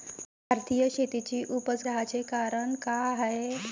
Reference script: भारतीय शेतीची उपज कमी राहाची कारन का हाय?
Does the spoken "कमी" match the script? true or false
false